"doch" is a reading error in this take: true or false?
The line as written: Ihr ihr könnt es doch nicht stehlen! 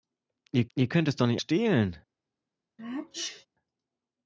false